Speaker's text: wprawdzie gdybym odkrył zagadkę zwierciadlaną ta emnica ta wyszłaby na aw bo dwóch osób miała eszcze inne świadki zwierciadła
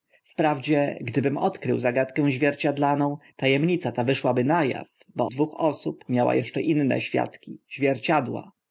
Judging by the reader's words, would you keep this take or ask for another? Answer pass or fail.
pass